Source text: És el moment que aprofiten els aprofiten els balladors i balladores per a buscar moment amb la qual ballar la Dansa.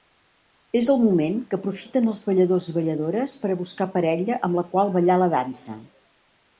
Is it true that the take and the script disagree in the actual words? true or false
true